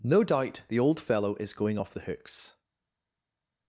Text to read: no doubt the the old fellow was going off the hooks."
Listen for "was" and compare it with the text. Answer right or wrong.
wrong